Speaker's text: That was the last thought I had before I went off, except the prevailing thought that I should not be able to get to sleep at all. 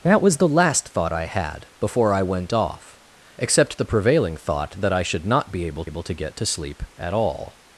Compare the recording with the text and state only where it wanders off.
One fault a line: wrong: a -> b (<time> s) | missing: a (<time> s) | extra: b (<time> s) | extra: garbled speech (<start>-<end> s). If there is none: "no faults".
extra: able (5.8 s)